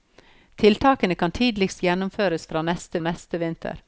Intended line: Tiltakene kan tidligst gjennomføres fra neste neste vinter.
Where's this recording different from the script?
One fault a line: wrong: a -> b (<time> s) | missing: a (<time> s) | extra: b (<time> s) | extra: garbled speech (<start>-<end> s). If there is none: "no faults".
no faults